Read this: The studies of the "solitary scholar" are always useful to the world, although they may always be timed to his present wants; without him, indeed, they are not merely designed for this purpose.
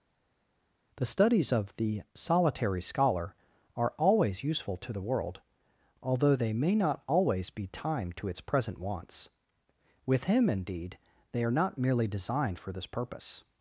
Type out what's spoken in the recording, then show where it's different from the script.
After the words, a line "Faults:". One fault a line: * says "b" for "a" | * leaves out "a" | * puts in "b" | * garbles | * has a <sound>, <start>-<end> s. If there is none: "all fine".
The studies of the "solitary scholar" are always useful to the world, although they may not always be timed to its present wants; with him, indeed, they are not merely designed for this purpose.
Faults:
* puts in "not"
* says "its" for "his"
* says "with" for "without"